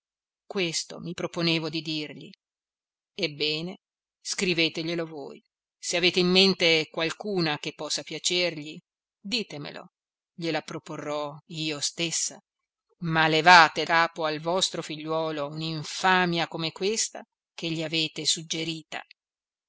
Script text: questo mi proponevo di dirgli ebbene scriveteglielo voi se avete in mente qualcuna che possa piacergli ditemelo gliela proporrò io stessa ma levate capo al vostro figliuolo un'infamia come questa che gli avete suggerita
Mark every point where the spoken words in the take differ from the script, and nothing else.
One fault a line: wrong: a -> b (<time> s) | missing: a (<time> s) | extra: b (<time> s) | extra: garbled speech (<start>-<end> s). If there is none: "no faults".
no faults